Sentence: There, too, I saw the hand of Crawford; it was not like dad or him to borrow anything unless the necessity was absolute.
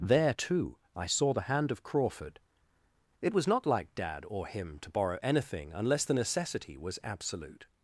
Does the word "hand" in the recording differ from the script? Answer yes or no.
no